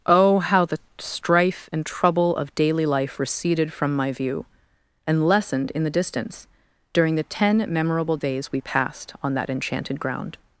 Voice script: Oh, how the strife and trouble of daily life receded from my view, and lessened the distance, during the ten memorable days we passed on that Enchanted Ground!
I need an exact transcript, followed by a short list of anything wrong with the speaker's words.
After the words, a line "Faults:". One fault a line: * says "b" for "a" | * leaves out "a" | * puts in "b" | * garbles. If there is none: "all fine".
Oh, how the strife and trouble of daily life receded from my view, and lessened in the distance, during the ten memorable days we passed on that Enchanted Ground!
Faults:
* puts in "in"